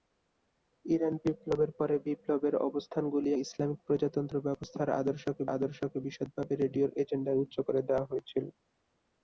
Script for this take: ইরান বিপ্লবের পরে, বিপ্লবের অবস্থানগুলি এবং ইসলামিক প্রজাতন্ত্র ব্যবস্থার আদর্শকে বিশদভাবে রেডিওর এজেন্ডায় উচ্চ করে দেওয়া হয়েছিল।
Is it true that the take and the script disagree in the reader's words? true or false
true